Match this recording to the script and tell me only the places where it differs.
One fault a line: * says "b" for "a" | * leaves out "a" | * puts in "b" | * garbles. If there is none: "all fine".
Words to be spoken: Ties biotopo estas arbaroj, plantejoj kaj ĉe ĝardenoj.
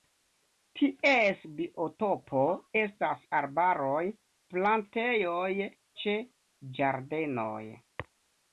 * leaves out "kaj"